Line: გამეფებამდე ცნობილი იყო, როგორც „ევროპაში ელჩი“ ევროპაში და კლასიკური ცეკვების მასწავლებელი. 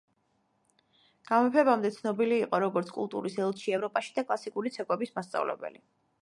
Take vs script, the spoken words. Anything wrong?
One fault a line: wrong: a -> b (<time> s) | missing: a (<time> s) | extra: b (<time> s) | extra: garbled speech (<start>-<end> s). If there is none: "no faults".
wrong: ევროპაში -> კულტურის (3.0 s)